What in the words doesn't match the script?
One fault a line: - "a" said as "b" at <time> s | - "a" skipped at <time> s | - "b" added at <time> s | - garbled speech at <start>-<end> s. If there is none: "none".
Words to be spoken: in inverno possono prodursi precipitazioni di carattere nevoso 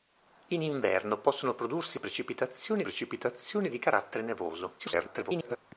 - "precipitazioni" added at 2.8 s
- garbled speech at 4.8-5.6 s